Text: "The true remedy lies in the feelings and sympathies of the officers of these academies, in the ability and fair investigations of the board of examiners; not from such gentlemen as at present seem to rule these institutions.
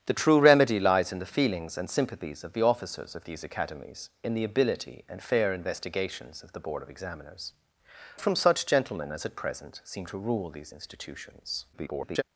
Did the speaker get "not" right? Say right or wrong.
wrong